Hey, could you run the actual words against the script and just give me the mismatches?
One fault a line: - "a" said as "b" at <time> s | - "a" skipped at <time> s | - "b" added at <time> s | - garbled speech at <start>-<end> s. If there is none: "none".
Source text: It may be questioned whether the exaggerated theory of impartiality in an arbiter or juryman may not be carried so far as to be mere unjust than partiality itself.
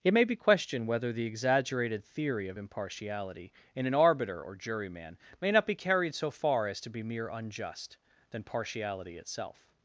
none